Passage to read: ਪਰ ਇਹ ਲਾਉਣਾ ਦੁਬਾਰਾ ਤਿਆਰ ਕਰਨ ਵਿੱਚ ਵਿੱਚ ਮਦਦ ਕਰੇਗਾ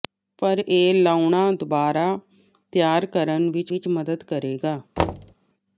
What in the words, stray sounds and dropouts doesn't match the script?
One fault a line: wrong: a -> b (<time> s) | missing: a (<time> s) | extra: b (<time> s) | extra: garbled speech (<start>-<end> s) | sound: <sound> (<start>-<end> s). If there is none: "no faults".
sound: thud (5.0-5.4 s)